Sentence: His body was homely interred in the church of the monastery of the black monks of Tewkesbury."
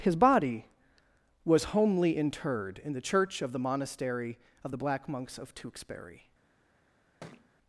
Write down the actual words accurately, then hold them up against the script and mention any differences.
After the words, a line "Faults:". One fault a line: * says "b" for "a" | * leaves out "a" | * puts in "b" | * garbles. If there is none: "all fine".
His body was homely interred in the church of the monastery of the black monks of Tewkesbury."
Faults:
all fine